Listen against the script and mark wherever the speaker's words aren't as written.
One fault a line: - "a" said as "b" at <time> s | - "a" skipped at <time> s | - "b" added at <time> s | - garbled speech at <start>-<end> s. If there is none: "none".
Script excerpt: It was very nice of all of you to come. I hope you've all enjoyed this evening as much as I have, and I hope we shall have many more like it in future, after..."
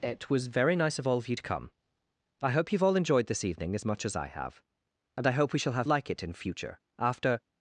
- "many more" skipped at 5.9 s